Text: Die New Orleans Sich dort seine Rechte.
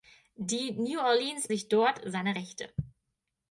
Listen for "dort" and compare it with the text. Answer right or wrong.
right